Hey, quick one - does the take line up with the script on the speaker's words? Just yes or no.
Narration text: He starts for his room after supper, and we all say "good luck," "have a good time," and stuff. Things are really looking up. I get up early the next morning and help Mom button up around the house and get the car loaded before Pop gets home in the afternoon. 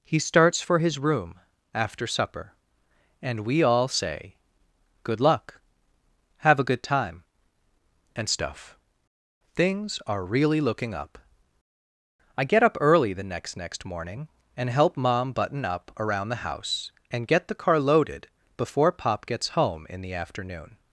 no